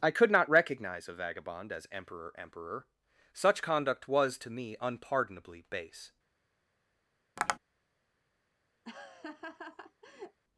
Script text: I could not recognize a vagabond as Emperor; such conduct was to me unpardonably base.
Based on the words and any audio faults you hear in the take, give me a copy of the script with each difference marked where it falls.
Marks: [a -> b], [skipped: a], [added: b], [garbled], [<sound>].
I could not recognize a vagabond as Emperor; [added: Emperor] such conduct was to me unpardonably base. [tap] [laugh]